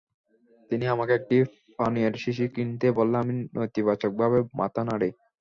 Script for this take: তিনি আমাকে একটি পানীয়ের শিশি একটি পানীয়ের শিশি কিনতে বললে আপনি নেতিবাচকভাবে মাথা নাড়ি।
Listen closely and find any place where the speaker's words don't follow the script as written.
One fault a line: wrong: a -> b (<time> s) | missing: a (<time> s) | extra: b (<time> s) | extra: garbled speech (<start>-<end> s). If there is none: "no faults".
missing: একটি পানীয়ের শিশি (2.5 s)
wrong: আপনি -> আমি (3.2 s)